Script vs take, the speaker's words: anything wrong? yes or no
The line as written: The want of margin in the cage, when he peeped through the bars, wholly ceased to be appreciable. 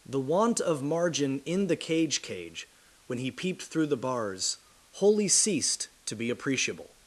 yes